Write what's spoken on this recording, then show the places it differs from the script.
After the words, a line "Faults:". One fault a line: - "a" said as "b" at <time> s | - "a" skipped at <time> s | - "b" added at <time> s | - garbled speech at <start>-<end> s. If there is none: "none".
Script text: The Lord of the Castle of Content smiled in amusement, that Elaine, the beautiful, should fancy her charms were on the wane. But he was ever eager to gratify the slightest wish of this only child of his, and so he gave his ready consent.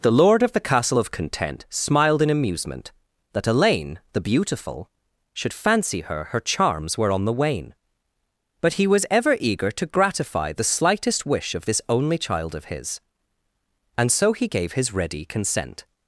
The Lord of the Castle of Content smiled in amusement, that Elaine, the beautiful, should fancy her her charms were on the wane. But he was ever eager to gratify the slightest wish of this only child of his, and so he gave his ready consent.
Faults:
- "her" added at 6.3 s